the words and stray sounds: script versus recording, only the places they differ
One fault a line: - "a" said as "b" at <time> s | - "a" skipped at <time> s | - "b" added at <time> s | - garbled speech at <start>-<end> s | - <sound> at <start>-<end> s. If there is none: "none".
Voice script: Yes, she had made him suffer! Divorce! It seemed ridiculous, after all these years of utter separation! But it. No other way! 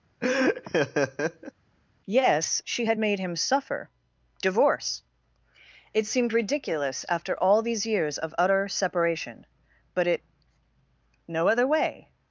- laugh at 0.2-1.5 s